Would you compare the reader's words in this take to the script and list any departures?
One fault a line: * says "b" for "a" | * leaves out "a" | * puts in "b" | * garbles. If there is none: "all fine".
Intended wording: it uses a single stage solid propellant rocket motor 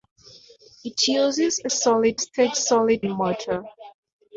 * says "solid" for "single"
* leaves out "propellant rocket"